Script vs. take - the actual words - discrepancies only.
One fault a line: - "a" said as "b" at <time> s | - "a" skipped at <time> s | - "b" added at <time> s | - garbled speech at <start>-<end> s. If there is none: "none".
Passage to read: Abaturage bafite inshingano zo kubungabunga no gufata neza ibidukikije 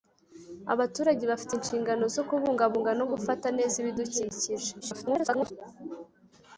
- garbled speech at 4.8-5.5 s